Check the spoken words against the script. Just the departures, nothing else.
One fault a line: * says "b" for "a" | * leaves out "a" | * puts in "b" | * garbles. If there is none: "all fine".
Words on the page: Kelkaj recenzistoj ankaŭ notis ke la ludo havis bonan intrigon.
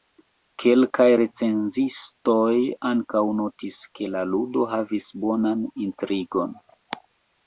all fine